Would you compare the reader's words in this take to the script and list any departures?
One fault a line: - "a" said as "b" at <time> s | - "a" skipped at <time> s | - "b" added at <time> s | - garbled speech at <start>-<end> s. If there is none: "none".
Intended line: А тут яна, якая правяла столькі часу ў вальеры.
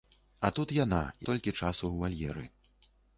- "якая правяла" skipped at 1.0 s